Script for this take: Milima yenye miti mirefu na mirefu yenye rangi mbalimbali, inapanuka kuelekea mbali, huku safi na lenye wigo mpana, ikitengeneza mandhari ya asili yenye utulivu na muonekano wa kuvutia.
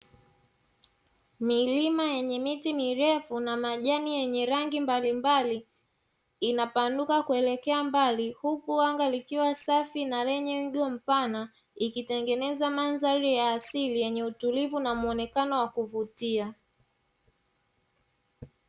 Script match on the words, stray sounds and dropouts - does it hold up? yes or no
no